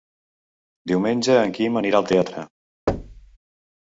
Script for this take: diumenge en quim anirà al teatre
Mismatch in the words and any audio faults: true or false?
true